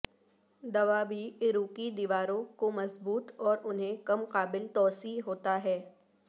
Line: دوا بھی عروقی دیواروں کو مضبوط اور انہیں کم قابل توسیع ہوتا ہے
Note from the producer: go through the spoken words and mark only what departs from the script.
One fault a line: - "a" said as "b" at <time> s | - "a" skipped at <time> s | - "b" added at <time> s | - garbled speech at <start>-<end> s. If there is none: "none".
none